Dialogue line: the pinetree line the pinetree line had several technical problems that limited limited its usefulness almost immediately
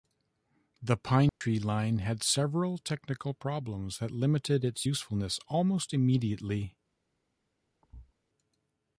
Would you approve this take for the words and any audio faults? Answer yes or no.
no